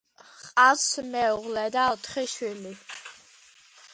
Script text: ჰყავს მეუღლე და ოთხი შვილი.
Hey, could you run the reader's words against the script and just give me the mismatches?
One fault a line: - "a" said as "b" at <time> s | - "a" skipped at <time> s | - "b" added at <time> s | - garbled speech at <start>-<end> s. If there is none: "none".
none